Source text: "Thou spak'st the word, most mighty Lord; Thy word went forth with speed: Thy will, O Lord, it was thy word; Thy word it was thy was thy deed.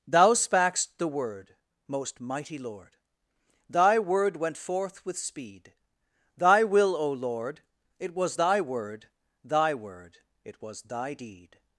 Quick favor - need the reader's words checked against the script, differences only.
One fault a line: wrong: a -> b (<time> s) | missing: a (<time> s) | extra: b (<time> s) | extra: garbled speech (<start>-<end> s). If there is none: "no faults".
missing: was thy (11.1 s)